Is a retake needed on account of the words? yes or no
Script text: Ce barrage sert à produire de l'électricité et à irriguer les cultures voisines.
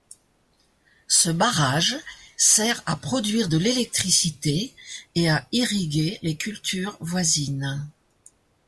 no